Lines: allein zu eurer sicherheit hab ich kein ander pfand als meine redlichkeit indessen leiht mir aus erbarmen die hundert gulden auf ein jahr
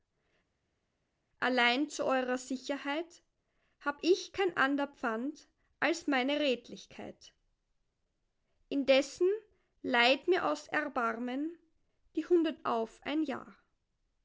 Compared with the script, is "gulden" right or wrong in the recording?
wrong